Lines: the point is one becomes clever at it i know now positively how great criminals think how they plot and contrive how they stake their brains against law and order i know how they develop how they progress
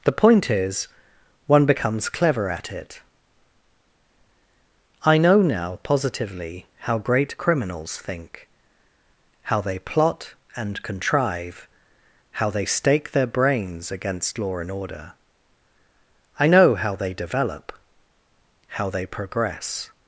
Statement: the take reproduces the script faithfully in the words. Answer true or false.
true